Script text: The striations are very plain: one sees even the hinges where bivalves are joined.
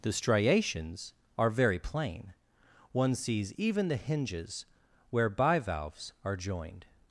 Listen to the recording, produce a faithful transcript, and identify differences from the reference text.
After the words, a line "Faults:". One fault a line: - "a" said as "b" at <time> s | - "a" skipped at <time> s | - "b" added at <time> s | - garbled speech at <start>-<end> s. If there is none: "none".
The striations are very plain: one sees even the hinges where bivalves are joined.
Faults:
none